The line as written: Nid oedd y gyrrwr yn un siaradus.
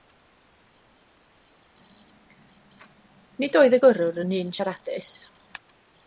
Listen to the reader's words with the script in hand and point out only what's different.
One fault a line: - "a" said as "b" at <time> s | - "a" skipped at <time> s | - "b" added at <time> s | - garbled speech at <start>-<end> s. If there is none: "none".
none